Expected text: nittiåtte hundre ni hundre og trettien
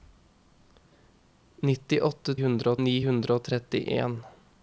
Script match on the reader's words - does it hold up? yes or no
yes